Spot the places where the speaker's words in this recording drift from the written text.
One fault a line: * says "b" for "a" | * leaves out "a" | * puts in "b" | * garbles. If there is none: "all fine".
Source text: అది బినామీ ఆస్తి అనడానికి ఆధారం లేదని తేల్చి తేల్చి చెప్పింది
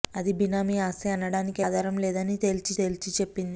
all fine